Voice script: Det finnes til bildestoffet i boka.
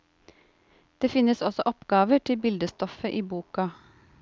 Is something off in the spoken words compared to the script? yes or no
yes